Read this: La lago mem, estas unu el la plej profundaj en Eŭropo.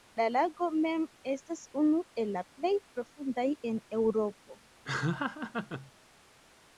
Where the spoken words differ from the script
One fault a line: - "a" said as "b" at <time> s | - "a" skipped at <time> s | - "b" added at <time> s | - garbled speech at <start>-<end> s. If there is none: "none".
none